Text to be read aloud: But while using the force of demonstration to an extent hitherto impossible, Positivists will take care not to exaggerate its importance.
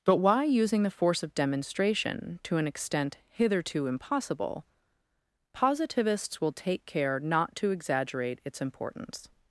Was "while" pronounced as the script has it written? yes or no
no